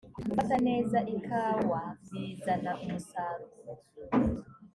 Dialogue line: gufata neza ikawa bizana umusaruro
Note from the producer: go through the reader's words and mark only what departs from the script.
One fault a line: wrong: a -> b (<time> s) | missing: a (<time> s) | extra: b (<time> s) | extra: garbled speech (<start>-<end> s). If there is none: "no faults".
no faults